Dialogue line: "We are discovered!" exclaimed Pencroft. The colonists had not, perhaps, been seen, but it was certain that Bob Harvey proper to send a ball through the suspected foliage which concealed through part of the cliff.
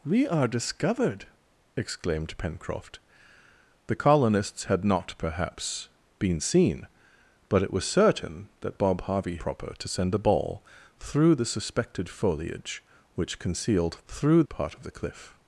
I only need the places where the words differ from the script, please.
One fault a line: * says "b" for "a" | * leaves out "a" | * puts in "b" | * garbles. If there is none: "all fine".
all fine